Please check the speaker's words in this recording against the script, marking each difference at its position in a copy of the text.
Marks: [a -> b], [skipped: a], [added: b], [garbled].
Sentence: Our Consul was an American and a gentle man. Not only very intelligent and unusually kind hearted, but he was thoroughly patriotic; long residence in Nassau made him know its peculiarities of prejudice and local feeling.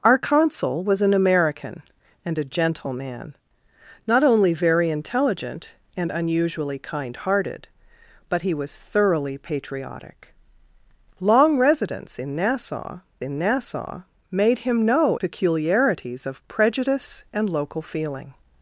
Our Consul was an American and a gentle man. Not only very intelligent and unusually kind hearted, but he was thoroughly patriotic; long residence in Nassau [added: in Nassau] made him know [skipped: its] peculiarities of prejudice and local feeling.